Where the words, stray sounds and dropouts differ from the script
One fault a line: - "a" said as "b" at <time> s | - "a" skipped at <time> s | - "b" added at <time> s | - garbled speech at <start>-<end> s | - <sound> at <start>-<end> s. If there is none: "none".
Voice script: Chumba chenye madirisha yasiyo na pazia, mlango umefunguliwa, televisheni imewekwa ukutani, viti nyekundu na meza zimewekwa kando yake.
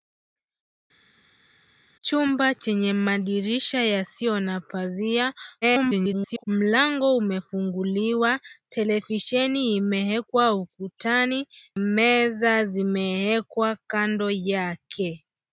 - garbled speech at 5.6-6.4 s
- "viti nyekundu na" skipped at 11.5 s